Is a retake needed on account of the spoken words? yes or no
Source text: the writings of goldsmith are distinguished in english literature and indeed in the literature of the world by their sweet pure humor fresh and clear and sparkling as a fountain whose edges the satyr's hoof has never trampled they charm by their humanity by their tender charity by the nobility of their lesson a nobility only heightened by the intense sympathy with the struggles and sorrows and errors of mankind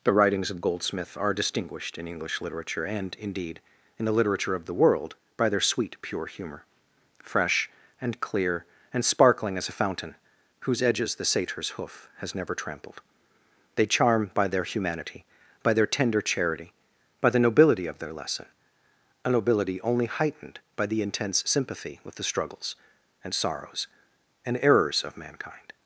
no